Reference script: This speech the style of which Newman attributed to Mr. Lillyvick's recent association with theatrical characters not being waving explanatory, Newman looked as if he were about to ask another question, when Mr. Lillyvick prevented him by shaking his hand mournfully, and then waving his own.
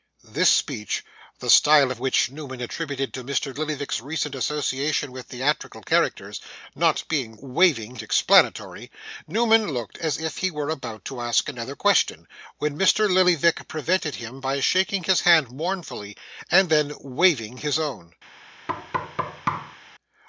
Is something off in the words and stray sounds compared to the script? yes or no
yes